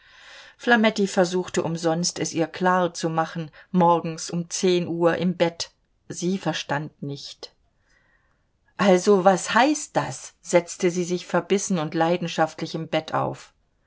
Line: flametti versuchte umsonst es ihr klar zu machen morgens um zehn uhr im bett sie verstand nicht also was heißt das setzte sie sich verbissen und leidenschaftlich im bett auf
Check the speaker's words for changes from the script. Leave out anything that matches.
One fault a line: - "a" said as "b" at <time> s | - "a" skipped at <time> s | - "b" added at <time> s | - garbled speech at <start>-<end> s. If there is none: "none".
none